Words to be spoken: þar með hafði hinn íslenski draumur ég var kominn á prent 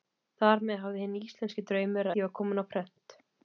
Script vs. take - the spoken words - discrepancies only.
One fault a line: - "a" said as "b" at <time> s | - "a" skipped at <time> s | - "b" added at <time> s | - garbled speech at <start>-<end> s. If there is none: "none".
none